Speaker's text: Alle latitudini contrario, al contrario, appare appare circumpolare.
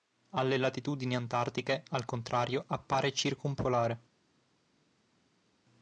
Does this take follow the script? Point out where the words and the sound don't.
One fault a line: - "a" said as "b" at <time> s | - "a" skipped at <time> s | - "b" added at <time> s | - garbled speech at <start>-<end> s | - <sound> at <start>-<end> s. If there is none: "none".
- "contrario" said as "antartiche" at 1.1 s
- "appare" skipped at 3.1 s